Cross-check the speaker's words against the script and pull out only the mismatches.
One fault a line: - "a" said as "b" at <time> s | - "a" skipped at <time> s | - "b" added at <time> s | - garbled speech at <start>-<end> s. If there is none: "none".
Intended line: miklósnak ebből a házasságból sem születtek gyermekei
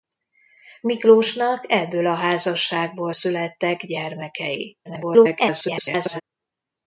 - "sem" skipped at 3.1 s
- garbled speech at 4.8-6.2 s